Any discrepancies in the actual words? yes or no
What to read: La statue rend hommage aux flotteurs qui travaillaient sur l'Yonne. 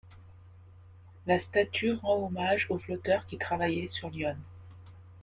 no